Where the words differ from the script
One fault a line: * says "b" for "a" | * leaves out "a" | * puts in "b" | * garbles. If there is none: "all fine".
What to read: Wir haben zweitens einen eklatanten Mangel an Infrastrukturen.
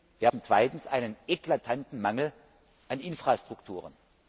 all fine